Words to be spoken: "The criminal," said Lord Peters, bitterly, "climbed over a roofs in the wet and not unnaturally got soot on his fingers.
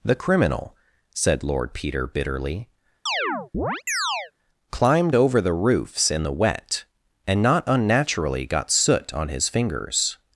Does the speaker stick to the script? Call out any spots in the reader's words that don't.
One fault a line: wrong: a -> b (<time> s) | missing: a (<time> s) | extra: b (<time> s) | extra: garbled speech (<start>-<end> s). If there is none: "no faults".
wrong: Peters -> Peter (1.7 s)
wrong: a -> the (5.4 s)